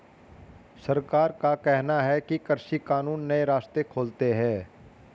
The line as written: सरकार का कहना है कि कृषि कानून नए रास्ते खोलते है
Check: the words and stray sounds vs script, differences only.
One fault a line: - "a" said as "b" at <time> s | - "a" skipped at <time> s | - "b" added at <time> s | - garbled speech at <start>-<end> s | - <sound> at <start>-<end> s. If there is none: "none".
none